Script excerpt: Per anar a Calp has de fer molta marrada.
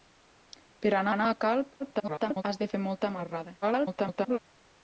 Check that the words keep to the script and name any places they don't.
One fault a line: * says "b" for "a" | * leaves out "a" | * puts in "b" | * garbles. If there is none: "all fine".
* puts in "anar"
* garbles
* garbles